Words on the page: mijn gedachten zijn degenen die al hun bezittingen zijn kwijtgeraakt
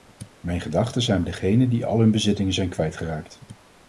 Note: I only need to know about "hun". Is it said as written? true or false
true